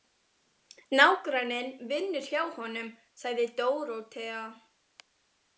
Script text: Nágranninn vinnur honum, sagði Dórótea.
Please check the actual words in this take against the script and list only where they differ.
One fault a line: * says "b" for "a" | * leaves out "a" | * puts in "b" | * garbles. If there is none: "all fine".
* puts in "hjá"